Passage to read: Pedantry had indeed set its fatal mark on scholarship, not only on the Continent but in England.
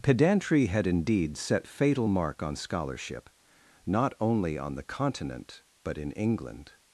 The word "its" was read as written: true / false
false